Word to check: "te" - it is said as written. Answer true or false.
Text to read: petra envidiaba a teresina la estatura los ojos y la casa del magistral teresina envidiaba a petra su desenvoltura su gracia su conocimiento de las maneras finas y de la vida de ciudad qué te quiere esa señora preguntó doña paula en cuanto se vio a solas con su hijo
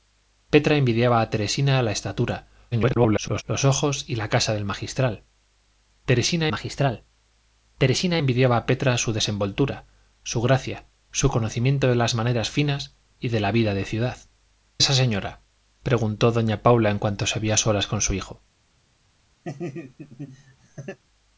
false